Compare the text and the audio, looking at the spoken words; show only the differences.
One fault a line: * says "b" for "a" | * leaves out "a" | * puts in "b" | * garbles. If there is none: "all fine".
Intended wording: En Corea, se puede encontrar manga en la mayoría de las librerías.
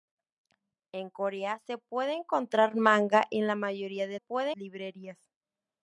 * says "puede" for "las"